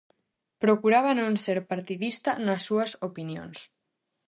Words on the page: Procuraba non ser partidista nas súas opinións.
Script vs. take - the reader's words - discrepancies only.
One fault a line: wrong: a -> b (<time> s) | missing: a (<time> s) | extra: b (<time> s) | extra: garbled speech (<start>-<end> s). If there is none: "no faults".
no faults